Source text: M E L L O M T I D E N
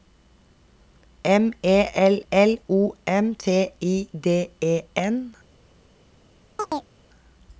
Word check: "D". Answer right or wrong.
right